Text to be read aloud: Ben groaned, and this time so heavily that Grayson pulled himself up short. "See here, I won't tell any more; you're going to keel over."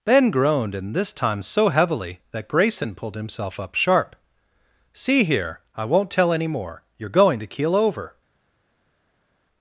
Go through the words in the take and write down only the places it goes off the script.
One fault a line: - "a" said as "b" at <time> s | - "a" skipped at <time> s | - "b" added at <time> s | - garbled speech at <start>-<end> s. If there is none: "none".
- "short" said as "sharp" at 3.8 s